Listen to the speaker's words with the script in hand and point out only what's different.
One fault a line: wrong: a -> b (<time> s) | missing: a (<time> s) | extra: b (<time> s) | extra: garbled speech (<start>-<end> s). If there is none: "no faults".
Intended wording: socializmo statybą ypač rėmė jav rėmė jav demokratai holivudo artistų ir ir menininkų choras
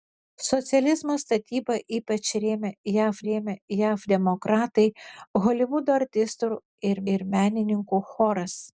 no faults